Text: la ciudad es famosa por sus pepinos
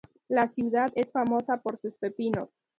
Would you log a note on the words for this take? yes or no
no